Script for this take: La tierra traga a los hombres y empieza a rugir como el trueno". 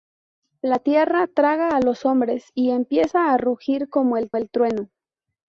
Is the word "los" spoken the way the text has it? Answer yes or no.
yes